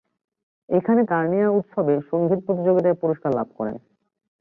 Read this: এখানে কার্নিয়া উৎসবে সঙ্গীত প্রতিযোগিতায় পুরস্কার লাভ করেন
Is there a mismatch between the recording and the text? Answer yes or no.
no